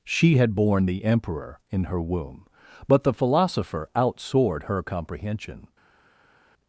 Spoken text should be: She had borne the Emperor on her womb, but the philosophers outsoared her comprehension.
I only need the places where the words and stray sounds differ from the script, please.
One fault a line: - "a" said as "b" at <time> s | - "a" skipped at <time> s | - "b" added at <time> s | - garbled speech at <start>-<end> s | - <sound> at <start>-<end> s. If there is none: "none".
- "on" said as "in" at 1.7 s
- "philosophers" said as "philosopher" at 3.1 s